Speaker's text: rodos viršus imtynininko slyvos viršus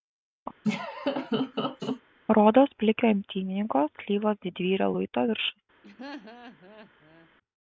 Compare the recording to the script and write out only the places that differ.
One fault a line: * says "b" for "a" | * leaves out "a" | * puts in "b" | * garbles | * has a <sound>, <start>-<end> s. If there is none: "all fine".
* has a laugh, 0.6-2.0 s
* says "plikio" for "viršus"
* puts in "didvyrio luito"
* has a laugh, 5.8-7.3 s